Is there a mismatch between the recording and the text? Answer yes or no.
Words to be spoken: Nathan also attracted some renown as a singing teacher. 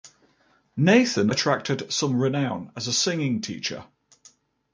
yes